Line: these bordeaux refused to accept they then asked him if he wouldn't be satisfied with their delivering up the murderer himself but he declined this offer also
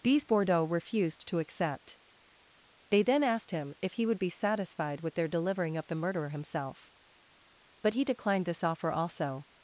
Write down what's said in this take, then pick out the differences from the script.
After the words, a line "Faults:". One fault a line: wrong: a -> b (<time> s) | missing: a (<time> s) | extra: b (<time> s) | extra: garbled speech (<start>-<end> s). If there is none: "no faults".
these bordeaux refused to accept they then asked him if he would be satisfied with their delivering up the murderer himself but he declined this offer also
Faults:
wrong: wouldn't -> would (4.1 s)